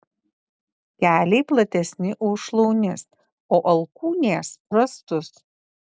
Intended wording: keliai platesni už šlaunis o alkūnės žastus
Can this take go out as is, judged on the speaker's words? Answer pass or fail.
pass